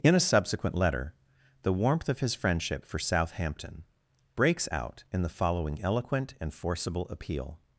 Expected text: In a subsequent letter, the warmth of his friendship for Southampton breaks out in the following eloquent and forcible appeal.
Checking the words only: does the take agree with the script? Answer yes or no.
yes